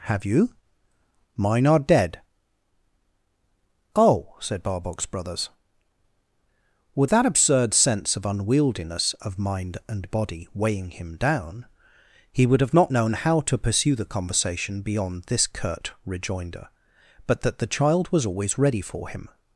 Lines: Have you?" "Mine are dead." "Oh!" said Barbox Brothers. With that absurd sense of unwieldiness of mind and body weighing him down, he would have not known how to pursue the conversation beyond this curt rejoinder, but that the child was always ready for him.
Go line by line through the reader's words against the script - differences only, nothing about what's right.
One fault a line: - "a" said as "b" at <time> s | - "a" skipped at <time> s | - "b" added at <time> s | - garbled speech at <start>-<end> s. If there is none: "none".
none